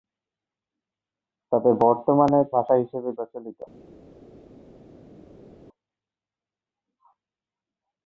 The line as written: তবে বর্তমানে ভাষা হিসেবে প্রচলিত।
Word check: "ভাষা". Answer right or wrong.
right